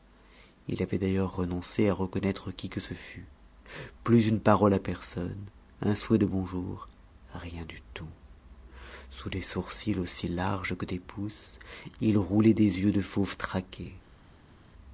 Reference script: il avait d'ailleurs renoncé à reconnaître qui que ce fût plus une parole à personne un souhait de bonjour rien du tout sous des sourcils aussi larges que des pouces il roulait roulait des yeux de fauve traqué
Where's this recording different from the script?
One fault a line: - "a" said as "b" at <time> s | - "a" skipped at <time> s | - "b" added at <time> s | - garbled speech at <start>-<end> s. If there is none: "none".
- "roulait" skipped at 12.5 s